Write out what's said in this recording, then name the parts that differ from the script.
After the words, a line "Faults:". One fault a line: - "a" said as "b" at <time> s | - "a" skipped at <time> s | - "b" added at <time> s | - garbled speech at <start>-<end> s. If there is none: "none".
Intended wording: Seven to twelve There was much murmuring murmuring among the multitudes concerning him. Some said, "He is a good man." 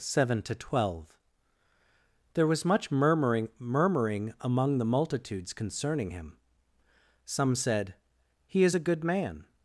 Seven to twelve There was much murmuring murmuring among the multitudes concerning him. Some said, "He is a good man."
Faults:
none